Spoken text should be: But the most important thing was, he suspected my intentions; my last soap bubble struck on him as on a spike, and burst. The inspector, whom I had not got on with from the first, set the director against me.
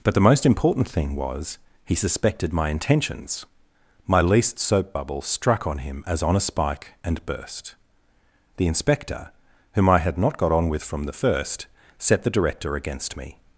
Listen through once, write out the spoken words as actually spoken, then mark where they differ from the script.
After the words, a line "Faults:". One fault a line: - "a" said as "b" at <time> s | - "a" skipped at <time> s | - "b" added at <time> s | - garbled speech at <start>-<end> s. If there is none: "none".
But the most important thing was, he suspected my intentions; my least soap bubble struck on him as on a spike, and burst. The inspector, whom I had not got on with from the first, set the director against me.
Faults:
- "last" said as "least" at 4.2 s